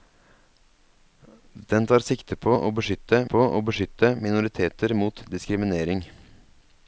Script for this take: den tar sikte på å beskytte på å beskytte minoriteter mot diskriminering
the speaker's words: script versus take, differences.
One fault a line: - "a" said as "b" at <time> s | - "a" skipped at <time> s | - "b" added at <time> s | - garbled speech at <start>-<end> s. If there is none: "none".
none